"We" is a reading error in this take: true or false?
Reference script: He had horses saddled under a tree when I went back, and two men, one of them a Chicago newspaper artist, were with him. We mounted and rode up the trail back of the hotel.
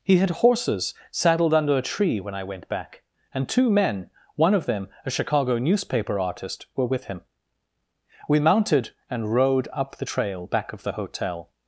false